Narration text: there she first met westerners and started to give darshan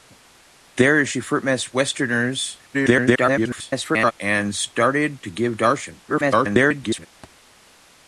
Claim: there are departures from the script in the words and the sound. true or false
true